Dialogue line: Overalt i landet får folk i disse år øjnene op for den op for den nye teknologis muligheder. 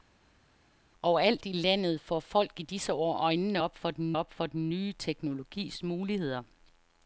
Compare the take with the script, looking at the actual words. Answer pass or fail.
pass